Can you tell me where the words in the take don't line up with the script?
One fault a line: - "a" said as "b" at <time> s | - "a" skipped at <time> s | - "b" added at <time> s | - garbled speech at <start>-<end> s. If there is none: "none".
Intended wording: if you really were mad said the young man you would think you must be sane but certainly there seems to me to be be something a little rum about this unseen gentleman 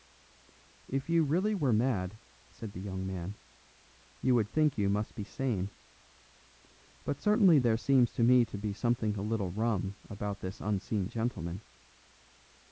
- "be" skipped at 8.7 s